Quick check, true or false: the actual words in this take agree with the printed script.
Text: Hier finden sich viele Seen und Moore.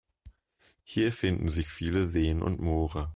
true